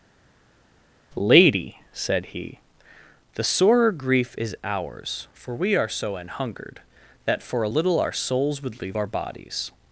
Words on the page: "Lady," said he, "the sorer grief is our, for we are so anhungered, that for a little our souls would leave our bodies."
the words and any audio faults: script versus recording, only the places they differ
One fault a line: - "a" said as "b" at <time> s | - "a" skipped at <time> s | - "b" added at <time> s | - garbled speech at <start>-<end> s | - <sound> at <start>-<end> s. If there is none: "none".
- "our" said as "ours" at 4.6 s